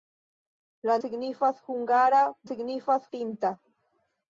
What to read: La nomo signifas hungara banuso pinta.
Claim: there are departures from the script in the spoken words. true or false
true